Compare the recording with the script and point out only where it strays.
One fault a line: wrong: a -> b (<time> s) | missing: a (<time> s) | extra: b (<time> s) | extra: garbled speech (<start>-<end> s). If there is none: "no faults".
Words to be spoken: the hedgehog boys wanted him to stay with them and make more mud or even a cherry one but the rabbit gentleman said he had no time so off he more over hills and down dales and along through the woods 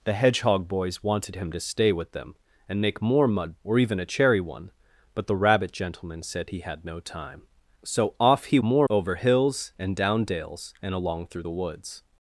no faults